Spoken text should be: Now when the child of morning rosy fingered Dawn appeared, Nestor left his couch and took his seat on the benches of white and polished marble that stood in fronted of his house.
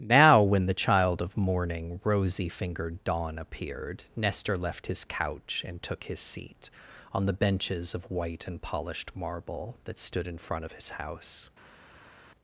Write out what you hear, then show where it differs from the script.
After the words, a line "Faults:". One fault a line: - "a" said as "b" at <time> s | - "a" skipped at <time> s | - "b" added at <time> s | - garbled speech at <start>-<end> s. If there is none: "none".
Now when the child of morning rosy fingered Dawn appeared, Nestor left his couch and took his seat on the benches of white and polished marble that stood in front of his house.
Faults:
- "fronted" said as "front" at 10.4 s